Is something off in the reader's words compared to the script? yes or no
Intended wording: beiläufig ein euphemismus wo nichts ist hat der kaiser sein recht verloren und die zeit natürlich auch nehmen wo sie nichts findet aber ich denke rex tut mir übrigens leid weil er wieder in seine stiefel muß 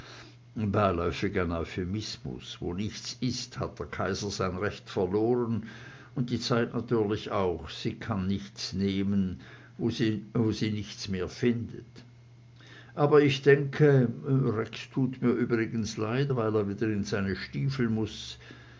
yes